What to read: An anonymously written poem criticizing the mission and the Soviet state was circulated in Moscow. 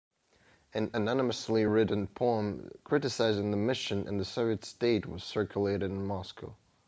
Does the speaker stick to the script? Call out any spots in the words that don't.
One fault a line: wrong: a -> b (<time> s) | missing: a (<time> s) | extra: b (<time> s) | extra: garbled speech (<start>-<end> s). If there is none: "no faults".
no faults